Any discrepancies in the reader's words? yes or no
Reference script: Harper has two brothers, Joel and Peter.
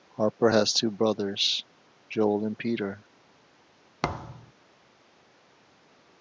no